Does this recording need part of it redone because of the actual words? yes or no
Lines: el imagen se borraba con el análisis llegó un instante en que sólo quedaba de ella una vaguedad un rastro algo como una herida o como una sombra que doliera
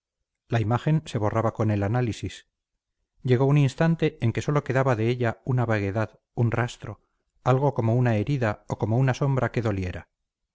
yes